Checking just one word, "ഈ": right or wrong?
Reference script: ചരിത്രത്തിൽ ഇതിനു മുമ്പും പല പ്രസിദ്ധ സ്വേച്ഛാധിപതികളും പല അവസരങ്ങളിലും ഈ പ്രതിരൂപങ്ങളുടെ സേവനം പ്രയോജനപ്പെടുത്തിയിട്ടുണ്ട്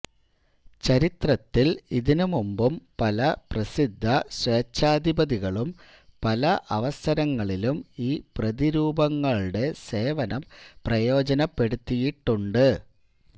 right